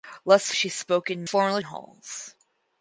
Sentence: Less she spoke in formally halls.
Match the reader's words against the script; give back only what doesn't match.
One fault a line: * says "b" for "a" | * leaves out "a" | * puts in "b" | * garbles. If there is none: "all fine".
all fine